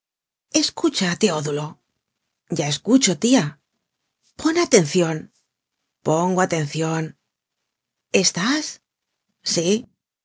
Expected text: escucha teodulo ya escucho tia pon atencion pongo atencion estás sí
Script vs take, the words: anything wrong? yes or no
no